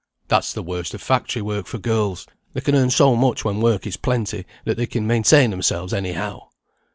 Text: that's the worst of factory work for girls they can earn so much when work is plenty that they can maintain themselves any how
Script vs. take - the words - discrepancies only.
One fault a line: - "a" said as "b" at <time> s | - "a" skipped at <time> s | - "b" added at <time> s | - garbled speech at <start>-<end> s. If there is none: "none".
none